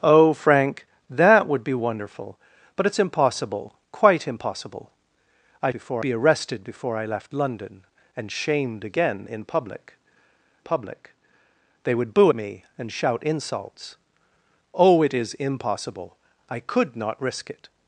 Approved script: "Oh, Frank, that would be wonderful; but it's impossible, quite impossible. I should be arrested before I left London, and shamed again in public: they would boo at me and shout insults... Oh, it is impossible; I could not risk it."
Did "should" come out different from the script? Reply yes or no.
yes